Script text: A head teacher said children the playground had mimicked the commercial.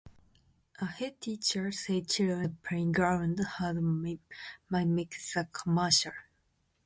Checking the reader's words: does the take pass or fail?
pass